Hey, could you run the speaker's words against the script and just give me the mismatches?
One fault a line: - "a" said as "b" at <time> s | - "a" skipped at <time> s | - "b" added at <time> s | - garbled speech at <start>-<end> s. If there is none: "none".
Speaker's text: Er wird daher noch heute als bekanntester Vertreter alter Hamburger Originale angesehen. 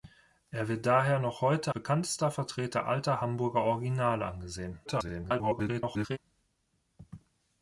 - "als" skipped at 1.8 s
- garbled speech at 4.8-6.2 s